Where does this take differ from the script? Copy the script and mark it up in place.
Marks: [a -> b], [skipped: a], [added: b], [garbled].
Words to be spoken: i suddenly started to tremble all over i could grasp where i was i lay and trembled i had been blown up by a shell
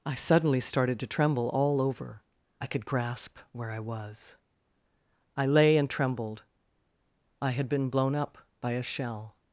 i suddenly started to tremble all over i could grasp where i was i lay and trembled i had been blown up by a shell